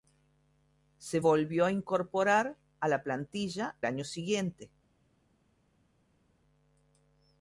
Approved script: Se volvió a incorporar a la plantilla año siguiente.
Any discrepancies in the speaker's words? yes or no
no